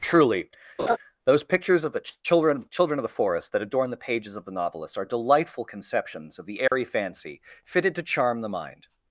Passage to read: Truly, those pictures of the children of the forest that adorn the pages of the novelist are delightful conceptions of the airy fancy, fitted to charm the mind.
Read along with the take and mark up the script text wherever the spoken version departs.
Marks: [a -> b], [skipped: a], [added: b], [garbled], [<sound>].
Truly, [laugh] those pictures of the children [added: children] of the forest that adorn the pages of the novelist are delightful conceptions of the airy [dropout] fancy, fitted to charm the mind.